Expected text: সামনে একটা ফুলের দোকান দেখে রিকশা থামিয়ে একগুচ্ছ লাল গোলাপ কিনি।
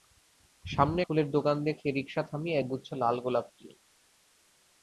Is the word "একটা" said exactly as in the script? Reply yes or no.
no